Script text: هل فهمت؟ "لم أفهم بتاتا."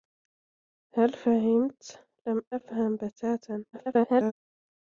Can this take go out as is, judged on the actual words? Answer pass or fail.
fail